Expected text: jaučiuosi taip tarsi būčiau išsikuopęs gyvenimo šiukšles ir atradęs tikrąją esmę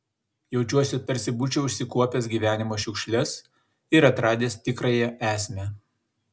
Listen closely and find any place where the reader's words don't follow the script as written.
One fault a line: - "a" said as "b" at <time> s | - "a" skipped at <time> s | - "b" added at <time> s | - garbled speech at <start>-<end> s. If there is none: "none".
- "taip" skipped at 1.0 s